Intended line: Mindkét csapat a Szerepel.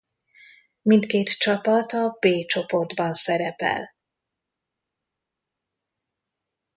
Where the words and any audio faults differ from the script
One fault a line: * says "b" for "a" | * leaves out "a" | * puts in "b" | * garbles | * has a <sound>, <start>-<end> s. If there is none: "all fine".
* puts in "B csoportban"